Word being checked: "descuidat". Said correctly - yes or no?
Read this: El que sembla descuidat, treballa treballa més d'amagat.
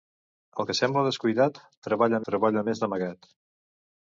yes